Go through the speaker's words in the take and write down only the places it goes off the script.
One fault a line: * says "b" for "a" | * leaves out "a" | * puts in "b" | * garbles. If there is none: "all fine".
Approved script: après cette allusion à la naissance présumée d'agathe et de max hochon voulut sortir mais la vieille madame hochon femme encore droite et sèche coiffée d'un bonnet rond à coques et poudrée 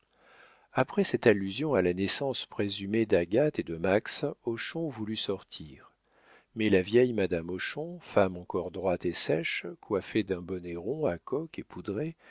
all fine